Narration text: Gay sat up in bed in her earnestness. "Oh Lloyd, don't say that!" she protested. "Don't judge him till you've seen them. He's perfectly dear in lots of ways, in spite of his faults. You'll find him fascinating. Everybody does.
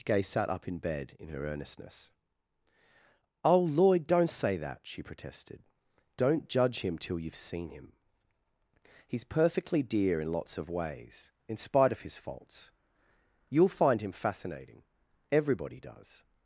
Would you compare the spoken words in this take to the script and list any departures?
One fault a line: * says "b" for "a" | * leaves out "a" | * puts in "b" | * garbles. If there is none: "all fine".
* says "him" for "them"